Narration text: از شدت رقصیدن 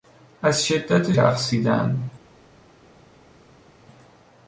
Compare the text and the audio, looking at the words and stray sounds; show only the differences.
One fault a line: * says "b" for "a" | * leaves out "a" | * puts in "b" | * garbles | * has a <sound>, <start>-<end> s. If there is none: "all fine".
all fine